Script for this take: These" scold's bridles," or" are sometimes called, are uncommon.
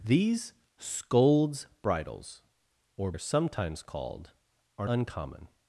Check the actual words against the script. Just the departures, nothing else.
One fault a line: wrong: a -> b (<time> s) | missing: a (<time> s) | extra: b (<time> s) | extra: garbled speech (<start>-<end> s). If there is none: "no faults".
no faults